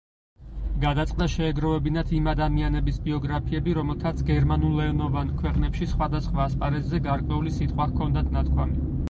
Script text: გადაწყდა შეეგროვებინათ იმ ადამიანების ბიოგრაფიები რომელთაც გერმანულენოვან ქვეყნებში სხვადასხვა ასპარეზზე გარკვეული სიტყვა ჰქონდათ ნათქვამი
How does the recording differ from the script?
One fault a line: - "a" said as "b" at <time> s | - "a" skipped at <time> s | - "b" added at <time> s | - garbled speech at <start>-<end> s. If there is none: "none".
none